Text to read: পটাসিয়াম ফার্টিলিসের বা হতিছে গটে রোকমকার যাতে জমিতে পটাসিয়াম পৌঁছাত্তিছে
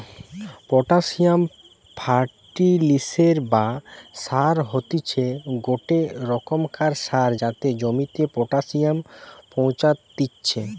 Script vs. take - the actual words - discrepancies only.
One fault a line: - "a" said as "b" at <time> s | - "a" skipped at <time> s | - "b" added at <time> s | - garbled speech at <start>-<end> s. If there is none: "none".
- "সার" added at 4.2 s
- "সার" added at 7.0 s